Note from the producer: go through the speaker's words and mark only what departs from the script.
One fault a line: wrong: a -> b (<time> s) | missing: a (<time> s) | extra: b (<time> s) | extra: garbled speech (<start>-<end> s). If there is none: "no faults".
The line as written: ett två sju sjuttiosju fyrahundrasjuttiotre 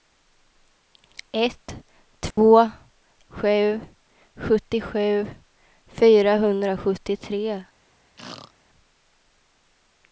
no faults